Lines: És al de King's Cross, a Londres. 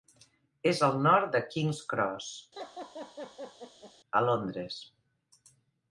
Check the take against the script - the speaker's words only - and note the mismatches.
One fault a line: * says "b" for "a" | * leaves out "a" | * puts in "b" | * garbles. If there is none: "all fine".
* puts in "nord"